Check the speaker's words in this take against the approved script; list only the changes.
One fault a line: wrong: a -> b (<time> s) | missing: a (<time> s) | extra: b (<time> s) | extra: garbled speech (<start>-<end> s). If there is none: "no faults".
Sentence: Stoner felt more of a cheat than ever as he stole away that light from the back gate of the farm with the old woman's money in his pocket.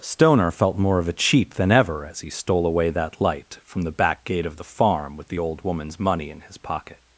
no faults